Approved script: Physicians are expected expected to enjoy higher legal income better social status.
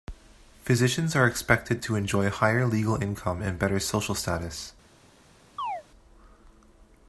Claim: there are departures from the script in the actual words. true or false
true